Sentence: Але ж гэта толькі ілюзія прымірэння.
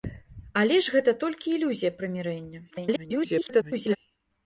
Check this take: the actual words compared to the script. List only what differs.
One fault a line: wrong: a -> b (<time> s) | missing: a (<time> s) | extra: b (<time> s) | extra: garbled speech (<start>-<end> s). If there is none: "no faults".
extra: garbled speech (2.7-4.0 s)